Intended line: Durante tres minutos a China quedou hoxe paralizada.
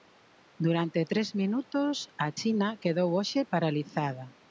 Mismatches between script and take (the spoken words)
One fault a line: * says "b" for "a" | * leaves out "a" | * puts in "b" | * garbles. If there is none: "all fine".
all fine